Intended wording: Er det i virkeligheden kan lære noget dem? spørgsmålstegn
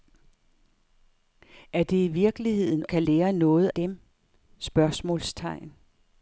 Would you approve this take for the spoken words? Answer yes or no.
yes